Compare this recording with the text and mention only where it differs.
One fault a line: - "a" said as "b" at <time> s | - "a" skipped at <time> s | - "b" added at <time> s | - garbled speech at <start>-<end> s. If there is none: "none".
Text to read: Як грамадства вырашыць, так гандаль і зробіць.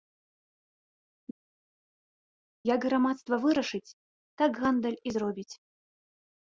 none